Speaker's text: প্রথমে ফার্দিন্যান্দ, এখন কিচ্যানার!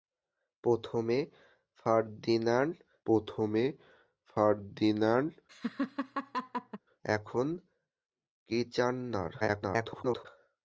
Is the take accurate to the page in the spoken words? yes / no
no